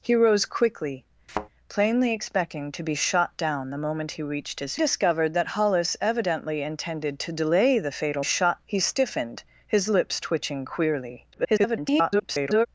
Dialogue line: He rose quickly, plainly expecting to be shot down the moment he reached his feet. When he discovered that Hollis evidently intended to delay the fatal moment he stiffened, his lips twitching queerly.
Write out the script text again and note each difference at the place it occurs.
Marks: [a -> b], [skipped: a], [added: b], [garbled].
He rose quickly, plainly expecting to be shot down the moment he reached his [skipped: feet. When he] discovered that Hollis evidently intended to delay the fatal [moment -> shot] he stiffened, his lips twitching queerly. [garbled]